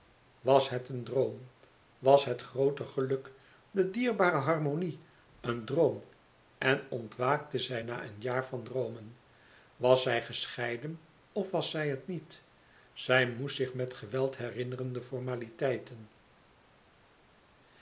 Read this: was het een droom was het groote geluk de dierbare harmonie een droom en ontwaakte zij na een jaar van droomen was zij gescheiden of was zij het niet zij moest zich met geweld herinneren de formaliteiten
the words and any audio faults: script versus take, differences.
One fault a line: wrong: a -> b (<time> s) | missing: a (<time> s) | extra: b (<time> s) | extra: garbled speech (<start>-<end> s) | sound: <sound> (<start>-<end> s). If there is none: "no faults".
no faults